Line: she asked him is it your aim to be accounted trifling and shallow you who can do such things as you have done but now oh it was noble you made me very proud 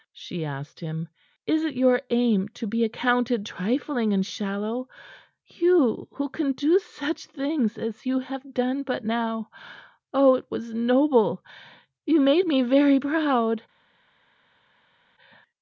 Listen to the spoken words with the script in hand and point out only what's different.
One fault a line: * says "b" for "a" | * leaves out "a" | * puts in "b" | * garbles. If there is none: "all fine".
all fine